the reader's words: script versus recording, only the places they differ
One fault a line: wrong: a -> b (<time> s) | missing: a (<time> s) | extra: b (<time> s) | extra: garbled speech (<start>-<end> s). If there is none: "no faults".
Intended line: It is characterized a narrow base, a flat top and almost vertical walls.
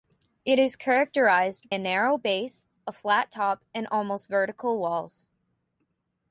no faults